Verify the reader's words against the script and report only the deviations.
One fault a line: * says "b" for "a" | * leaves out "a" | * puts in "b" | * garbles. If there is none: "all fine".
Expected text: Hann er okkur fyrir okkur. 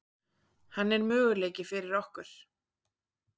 * says "möguleiki" for "okkur"